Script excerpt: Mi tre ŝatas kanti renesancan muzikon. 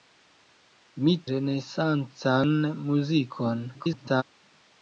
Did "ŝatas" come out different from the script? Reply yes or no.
yes